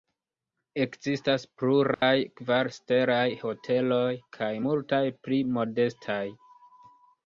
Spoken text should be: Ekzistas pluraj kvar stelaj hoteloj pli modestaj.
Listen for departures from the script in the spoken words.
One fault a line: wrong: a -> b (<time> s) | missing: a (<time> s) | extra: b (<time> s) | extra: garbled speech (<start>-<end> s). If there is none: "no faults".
extra: kaj multaj (4.4 s)